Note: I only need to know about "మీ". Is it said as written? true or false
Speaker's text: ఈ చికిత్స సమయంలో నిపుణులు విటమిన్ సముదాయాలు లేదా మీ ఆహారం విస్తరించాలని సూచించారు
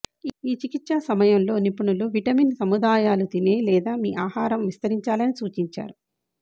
true